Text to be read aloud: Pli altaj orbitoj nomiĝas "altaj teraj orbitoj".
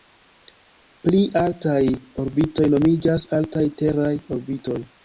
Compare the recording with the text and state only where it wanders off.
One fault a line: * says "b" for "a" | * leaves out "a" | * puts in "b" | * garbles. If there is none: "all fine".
all fine